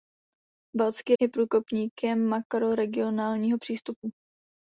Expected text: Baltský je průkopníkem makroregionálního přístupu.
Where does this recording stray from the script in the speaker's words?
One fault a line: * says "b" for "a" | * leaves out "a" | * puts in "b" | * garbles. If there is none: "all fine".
all fine